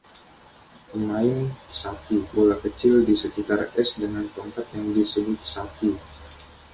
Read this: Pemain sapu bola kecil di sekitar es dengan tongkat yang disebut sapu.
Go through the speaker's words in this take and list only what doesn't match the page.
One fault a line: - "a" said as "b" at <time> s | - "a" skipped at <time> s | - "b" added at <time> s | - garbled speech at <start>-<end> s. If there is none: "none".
none